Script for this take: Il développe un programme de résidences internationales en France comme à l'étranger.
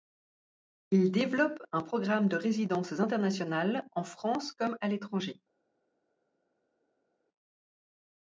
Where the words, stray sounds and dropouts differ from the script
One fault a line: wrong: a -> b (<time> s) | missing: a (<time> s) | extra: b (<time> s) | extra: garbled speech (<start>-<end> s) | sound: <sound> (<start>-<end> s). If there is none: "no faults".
no faults